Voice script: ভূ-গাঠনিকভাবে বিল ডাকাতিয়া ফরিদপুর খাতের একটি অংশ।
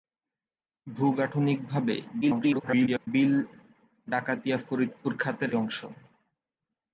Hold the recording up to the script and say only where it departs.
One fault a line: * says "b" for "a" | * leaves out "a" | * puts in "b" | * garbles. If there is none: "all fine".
* garbles
* leaves out "একটি"